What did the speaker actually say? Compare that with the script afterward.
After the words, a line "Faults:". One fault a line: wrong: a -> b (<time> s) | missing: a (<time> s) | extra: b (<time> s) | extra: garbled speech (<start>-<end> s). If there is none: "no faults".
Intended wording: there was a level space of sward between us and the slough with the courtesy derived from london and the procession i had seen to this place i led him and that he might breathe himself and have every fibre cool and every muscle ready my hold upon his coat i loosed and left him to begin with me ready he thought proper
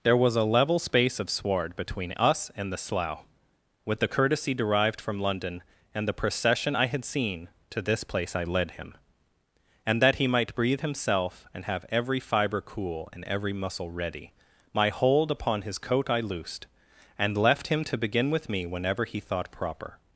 there was a level space of sward between us and the slough with the courtesy derived from london and the procession i had seen to this place i led him and that he might breathe himself and have every fibre cool and every muscle ready my hold upon his coat i loosed and left him to begin with me whenever he thought proper
Faults:
wrong: ready -> whenever (18.7 s)